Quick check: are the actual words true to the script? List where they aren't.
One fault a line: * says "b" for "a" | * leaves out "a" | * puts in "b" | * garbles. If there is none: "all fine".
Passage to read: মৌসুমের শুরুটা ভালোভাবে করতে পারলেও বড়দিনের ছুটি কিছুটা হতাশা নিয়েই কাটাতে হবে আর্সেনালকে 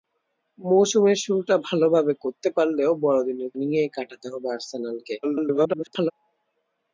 * leaves out "ছুটি কিছুটা হতাশা"
* garbles